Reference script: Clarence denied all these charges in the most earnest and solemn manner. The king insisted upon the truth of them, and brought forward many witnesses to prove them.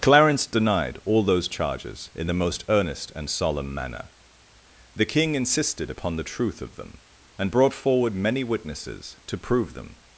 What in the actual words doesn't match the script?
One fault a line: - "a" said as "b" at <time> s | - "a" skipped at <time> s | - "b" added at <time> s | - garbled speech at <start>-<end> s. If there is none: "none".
- "these" said as "those" at 1.2 s